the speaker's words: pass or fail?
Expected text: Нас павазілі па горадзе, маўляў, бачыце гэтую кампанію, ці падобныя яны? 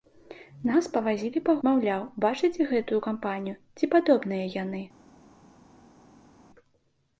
fail